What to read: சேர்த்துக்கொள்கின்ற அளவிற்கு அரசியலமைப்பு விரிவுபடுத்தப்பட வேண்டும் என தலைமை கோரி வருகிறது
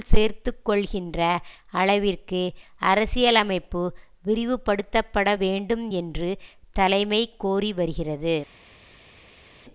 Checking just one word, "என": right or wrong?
wrong